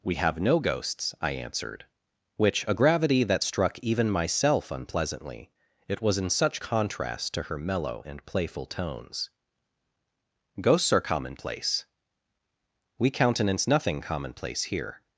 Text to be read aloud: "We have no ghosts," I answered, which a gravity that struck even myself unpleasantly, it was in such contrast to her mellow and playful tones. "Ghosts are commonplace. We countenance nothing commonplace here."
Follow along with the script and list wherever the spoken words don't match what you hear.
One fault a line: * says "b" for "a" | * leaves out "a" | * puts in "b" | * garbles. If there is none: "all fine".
all fine